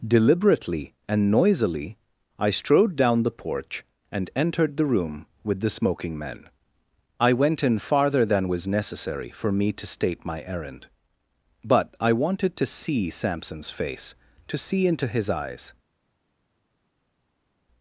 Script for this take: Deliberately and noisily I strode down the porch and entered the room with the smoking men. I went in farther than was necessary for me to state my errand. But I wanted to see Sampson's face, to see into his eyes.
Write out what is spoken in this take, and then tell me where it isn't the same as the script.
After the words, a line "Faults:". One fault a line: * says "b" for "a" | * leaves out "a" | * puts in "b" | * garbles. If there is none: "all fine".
Deliberately and noisily I strode down the porch and entered the room with the smoking men. I went in farther than was necessary for me to state my errand. But I wanted to see Sampson's face, to see into his eyes.
Faults:
all fine